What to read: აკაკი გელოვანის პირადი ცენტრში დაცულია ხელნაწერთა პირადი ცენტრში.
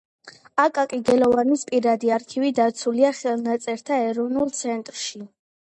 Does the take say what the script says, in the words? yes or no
no